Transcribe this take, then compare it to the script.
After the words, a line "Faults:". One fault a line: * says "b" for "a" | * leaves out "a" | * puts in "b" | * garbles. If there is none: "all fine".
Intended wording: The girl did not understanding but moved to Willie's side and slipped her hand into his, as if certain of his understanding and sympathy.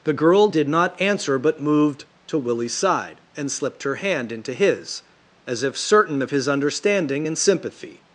The girl did not answer but moved to Willie's side and slipped her hand into his, as if certain of his understanding and sympathy.
Faults:
* says "answer" for "understanding"